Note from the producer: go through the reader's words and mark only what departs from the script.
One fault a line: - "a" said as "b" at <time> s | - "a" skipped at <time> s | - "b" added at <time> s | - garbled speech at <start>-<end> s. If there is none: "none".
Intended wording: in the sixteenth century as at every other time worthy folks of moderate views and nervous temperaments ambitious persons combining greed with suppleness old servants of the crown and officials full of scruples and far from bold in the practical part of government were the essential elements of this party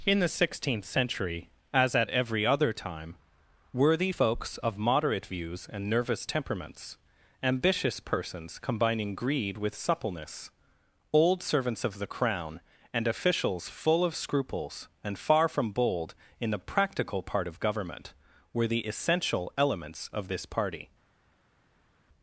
none